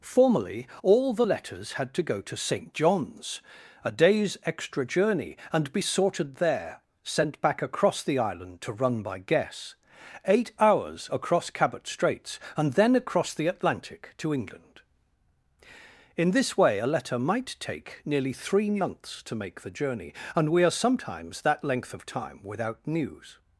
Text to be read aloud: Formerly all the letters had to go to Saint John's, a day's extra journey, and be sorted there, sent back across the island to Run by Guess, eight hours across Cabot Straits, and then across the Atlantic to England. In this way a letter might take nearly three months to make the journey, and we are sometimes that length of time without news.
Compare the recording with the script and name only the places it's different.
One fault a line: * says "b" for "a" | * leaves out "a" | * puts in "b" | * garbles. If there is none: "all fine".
all fine